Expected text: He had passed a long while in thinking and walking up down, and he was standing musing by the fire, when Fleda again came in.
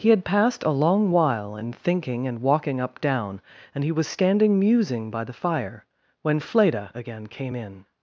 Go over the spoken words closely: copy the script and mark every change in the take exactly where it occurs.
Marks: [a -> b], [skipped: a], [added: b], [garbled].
He had passed a long while in thinking and walking up down, and he was standing musing by the fire, when Fleda again came in.